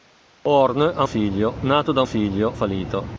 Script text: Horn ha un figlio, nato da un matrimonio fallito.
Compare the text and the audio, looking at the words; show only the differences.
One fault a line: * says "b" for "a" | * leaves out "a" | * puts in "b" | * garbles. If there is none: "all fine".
* leaves out "un"
* says "figlio" for "matrimonio"